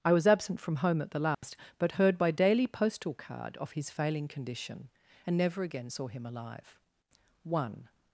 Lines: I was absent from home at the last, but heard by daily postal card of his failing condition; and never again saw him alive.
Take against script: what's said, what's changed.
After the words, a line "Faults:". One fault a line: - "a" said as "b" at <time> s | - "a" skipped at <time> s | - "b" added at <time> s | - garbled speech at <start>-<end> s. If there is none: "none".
I was absent from home at the last, but heard by daily postal card of his failing condition; and never again saw him alive. One
Faults:
- "One" added at 7.4 s